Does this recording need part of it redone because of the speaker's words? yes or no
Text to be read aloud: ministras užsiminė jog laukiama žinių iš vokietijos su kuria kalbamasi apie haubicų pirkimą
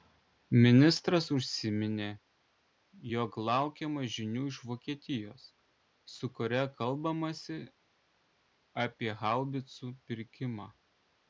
no